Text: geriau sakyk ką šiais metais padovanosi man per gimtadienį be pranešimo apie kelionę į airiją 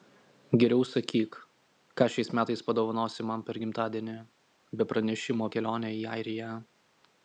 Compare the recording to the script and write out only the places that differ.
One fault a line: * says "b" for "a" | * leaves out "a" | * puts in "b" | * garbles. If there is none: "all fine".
* leaves out "apie"